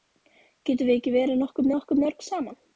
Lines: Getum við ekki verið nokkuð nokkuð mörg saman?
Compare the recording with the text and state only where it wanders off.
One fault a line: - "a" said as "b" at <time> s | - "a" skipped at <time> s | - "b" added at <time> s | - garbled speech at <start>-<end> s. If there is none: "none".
none